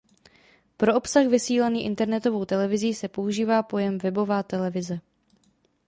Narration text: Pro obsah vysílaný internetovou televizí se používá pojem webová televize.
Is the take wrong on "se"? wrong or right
right